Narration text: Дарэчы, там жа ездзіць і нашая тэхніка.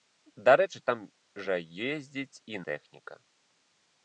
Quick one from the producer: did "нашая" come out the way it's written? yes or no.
no